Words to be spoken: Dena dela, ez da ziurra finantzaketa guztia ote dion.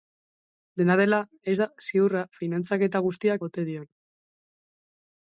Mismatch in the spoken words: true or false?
false